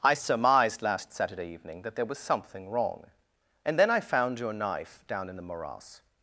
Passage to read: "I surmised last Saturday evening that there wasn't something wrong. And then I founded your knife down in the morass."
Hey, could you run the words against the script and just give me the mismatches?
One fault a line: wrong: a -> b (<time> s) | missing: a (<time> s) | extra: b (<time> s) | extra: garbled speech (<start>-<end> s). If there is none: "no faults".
wrong: wasn't -> was (2.0 s)
wrong: founded -> found (4.0 s)